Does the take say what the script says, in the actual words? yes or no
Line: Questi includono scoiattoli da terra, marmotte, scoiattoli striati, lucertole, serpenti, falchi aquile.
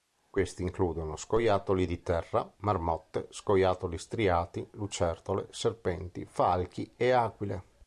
no